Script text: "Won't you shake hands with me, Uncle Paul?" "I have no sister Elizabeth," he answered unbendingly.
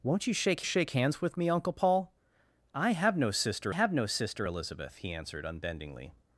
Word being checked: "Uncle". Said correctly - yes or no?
yes